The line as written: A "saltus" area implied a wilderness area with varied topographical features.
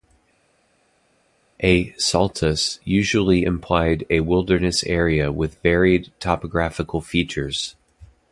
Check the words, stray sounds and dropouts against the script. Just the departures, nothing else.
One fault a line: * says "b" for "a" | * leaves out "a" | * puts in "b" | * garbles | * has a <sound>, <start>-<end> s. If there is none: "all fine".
* says "usually" for "area"